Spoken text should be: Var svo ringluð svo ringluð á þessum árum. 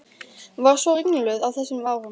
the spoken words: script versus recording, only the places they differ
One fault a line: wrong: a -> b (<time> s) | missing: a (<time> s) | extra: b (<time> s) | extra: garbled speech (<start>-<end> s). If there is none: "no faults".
missing: svo ringluð (1.4 s)